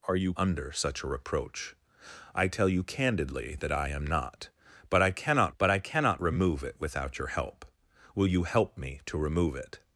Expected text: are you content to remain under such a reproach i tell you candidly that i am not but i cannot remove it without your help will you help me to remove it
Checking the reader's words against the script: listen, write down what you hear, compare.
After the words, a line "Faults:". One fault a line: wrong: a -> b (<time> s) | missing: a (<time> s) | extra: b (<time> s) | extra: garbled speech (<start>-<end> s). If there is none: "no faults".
are you under such a reproach i tell you candidly that i am not but i cannot but i cannot remove it without your help will you help me to remove it
Faults:
missing: content to remain (0.3 s)
extra: but i cannot (5.6 s)